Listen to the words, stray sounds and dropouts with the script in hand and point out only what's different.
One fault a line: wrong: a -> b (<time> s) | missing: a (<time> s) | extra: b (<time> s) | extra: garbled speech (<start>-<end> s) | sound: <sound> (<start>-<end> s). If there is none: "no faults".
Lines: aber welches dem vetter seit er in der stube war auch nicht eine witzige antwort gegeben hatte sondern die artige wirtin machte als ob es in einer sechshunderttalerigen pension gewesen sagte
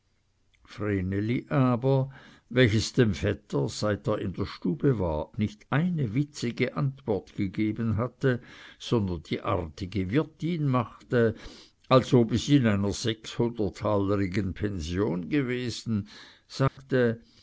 missing: auch (5.3 s)
sound: dropout (16.7-16.8 s)